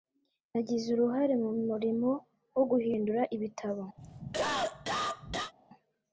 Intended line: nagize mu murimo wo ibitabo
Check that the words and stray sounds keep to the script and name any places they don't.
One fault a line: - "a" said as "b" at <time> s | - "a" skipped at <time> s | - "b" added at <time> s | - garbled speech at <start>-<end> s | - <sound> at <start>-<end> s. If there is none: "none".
- "uruhare" added at 0.9 s
- "guhindura" added at 2.7 s
- cough at 4.0-5.5 s